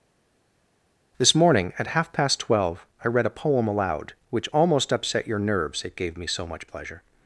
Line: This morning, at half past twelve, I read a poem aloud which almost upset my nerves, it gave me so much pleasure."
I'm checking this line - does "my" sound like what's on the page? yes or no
no